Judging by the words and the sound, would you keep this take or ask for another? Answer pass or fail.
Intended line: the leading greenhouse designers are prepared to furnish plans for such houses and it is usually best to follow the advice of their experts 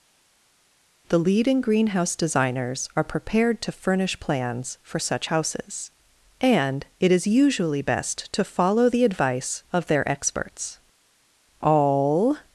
fail